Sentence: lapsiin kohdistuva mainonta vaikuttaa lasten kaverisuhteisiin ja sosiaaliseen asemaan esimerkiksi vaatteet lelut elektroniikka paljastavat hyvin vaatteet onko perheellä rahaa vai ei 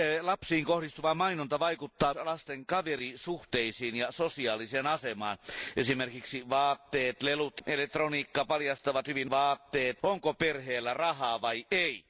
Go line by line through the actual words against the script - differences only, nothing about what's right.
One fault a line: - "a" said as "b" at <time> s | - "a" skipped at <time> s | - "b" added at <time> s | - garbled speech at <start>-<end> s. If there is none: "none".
none